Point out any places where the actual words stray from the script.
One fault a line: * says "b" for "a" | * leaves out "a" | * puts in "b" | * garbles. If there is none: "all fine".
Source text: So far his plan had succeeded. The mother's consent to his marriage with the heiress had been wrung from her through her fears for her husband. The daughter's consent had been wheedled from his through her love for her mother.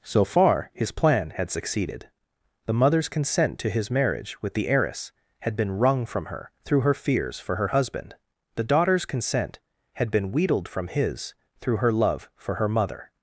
all fine